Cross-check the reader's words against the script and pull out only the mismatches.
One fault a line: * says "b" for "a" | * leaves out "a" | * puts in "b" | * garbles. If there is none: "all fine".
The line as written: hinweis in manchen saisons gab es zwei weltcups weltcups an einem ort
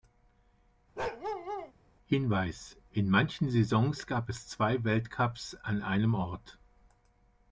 * leaves out "weltcups"